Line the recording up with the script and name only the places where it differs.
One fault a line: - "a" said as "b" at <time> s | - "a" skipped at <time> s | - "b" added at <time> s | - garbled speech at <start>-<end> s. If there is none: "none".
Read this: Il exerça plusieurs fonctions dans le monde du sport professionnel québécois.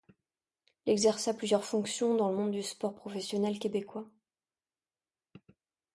none